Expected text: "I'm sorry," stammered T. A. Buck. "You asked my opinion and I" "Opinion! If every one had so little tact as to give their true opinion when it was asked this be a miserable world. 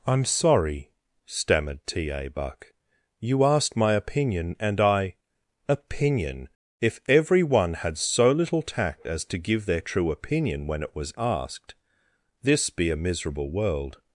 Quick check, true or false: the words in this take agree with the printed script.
true